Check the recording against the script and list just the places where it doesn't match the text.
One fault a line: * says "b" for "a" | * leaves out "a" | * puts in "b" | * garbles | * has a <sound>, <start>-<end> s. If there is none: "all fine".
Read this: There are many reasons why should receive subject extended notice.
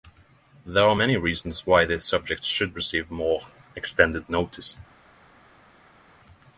* puts in "this subject"
* says "more" for "subject"